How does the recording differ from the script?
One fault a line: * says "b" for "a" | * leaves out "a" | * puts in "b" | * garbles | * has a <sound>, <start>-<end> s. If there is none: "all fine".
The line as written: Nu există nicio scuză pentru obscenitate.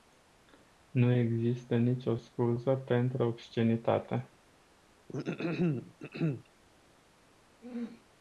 * has a throat clearing, 5.1-6.5 s
* has a throat clearing, 7.6-8.1 s